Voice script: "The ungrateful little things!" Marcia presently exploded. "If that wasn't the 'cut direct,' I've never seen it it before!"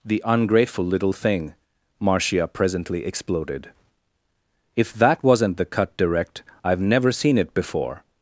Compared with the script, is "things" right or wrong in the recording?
wrong